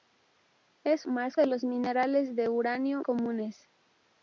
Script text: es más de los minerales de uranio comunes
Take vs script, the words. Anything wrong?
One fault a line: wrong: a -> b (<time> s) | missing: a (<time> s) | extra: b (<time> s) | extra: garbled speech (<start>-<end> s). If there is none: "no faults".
no faults